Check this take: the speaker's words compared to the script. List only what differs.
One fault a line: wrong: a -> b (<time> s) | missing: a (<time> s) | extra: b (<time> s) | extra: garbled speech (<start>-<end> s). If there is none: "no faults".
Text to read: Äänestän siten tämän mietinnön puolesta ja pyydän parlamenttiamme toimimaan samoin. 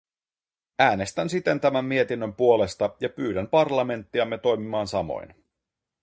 no faults